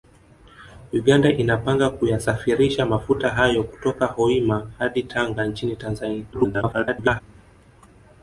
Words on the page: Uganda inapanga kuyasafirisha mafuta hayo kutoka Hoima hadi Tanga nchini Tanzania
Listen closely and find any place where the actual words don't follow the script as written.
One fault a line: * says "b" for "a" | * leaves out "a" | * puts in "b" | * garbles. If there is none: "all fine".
* garbles